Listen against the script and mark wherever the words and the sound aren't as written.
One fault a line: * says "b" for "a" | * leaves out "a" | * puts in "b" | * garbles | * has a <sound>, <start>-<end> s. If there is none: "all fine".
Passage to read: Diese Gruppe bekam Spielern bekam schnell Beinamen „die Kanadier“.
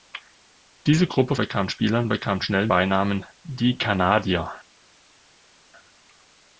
all fine